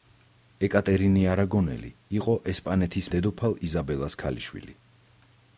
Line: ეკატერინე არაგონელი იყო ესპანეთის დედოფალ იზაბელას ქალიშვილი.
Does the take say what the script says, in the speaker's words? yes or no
yes